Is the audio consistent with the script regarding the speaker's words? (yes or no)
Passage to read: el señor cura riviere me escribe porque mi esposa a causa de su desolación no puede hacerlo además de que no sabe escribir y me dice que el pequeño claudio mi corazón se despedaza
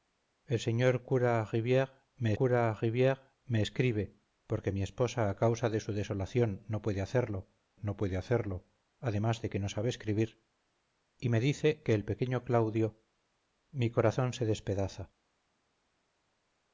no